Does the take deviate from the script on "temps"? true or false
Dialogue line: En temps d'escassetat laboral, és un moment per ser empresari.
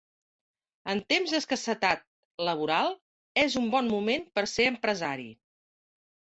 false